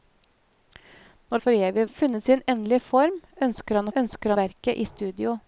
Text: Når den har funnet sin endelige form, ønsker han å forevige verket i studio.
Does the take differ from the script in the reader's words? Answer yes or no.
yes